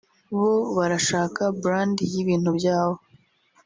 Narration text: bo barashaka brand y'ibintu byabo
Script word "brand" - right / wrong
right